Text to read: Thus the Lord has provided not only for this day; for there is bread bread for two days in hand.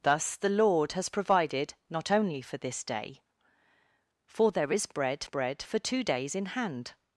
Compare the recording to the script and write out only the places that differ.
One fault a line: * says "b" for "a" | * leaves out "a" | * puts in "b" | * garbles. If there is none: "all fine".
all fine